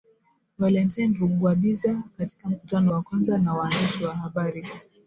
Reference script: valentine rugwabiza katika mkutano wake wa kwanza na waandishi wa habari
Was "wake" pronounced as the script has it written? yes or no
no